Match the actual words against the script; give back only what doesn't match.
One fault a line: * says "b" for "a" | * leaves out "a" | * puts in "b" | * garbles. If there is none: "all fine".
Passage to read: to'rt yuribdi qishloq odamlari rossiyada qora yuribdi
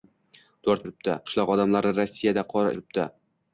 all fine